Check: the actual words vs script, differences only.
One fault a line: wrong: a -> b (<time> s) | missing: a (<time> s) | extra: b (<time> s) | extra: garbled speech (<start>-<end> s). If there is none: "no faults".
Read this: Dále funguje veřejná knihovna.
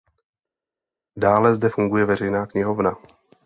extra: zde (1.6 s)